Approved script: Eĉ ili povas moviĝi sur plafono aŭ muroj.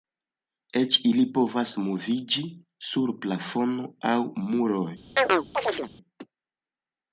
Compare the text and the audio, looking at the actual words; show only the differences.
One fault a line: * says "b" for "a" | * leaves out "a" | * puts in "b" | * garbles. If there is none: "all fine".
all fine